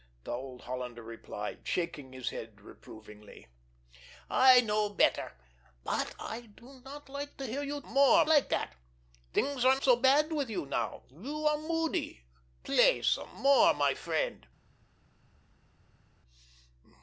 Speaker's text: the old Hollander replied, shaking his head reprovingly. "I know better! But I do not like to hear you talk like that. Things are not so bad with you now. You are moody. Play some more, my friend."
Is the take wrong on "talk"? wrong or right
wrong